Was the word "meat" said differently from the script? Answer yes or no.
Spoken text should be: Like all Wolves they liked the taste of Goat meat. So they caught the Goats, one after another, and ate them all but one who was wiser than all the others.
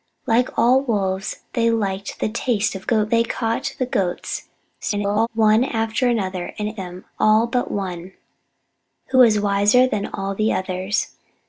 yes